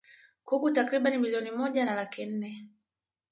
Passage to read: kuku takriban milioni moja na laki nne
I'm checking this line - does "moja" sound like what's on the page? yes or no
yes